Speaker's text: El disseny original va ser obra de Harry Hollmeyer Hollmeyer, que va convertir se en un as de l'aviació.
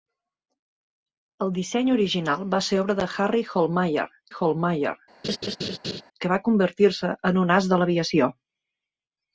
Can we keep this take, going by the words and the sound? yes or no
no